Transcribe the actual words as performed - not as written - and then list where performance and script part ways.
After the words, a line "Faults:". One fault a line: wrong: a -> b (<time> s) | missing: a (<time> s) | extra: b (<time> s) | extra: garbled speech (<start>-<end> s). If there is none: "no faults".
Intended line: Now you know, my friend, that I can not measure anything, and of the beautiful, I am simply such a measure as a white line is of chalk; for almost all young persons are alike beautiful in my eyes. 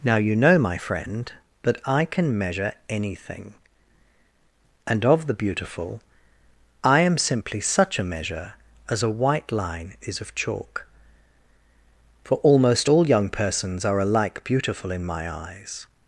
Now you know, my friend, that I can measure anything, and of the beautiful, I am simply such a measure as a white line is of chalk; for almost all young persons are alike beautiful in my eyes.
Faults:
missing: not (2.4 s)